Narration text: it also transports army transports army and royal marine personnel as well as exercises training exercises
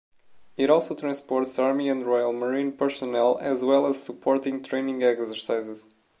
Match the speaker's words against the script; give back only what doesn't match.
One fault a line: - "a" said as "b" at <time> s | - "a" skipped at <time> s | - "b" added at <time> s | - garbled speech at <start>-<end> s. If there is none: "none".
- "transports army" skipped at 1.9 s
- "exercises" said as "supporting" at 4.0 s